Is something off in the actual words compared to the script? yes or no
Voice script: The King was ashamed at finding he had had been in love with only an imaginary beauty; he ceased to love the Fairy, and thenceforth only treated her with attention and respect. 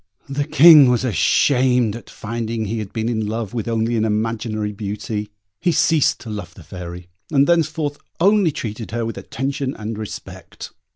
yes